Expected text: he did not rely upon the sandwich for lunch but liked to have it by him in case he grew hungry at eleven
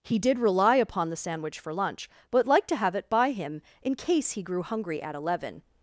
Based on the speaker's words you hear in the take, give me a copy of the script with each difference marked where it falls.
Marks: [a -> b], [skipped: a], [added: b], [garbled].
he did [skipped: not] rely upon the sandwich for lunch but liked to have it by him in case he grew hungry at eleven